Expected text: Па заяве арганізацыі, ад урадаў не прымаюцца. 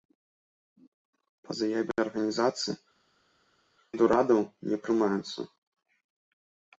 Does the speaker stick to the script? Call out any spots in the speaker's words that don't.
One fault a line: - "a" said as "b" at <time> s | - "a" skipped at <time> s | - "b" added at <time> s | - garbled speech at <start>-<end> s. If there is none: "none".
none